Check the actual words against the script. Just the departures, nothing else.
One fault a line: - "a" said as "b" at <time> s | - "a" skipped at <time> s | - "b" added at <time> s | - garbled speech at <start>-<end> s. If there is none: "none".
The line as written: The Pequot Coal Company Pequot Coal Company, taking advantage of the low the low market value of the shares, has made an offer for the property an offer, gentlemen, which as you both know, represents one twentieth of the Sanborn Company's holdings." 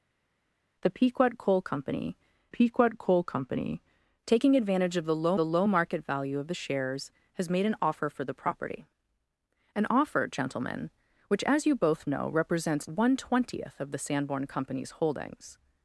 none